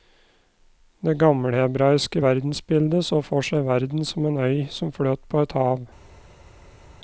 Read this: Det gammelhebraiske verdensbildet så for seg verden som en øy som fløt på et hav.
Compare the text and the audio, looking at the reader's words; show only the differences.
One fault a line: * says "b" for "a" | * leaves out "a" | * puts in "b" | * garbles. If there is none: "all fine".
all fine